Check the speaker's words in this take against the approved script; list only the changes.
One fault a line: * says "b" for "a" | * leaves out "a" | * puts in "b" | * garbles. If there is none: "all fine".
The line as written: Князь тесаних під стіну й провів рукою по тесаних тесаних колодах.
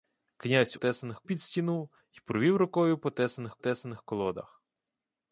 all fine